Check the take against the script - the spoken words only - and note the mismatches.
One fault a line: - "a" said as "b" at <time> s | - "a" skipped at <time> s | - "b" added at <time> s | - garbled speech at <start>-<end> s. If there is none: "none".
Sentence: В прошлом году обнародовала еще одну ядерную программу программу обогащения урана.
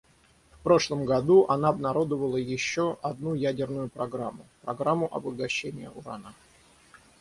- "она" added at 1.5 s